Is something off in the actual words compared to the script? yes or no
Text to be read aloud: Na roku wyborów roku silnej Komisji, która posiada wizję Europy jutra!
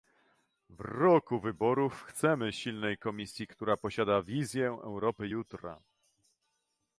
yes